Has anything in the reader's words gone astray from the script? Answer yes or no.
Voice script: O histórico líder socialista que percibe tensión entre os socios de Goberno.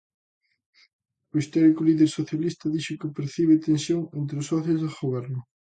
yes